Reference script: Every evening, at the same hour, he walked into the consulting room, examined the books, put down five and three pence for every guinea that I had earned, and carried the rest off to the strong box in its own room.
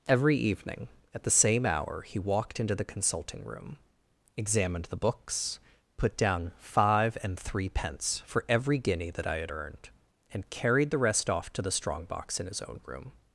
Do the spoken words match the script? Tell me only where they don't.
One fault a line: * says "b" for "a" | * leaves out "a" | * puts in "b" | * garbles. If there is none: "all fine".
* says "his" for "its"